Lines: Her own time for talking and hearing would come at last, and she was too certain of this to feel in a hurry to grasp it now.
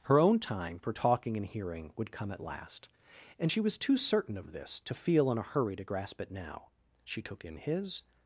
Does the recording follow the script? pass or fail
fail